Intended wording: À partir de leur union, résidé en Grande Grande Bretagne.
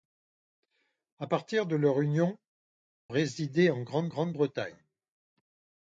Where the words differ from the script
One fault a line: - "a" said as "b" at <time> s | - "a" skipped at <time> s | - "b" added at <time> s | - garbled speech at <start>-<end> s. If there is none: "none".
none